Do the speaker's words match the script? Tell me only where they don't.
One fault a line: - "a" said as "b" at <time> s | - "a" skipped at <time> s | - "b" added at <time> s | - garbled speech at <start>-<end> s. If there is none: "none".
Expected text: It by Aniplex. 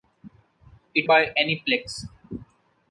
none